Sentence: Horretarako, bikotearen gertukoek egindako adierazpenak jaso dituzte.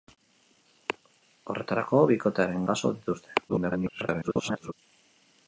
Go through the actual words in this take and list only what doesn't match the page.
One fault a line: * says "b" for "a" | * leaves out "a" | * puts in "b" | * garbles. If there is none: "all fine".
* leaves out "gertukoek egindako adierazpenak"
* garbles